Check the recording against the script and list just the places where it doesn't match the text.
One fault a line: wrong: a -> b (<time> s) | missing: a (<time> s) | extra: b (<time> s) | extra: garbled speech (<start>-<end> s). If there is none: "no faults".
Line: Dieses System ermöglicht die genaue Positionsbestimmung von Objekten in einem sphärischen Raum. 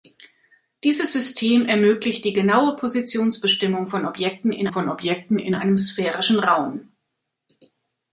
extra: von Objekten in (4.7 s)